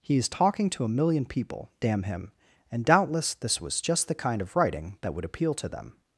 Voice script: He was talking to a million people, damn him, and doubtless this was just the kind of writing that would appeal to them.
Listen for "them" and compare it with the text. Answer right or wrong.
right